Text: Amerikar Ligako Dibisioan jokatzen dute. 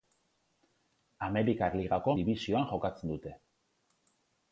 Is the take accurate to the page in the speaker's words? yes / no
yes